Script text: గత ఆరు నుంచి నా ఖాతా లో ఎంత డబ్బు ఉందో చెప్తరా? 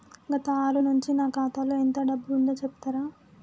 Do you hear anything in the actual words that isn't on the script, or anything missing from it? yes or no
no